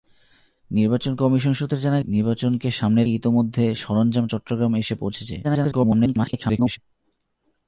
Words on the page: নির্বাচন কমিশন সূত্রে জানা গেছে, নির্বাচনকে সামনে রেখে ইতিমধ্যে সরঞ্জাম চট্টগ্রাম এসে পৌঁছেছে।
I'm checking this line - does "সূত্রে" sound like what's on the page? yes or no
yes